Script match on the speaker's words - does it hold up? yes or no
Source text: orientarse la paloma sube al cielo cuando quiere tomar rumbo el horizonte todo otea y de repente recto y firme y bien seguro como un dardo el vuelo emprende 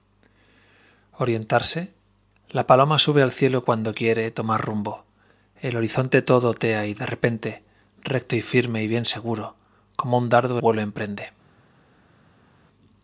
no